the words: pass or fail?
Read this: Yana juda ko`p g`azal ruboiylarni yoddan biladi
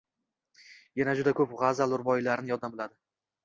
pass